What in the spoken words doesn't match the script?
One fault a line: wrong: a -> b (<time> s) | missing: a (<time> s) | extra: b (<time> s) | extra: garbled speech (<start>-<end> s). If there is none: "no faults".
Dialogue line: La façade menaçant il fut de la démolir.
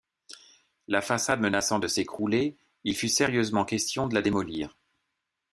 extra: de s'écrouler (1.8 s)
extra: sérieusement question (3.1 s)